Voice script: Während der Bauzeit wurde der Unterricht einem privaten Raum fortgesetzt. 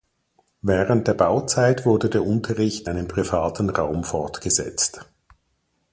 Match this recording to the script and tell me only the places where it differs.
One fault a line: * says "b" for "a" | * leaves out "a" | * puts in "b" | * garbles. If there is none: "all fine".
all fine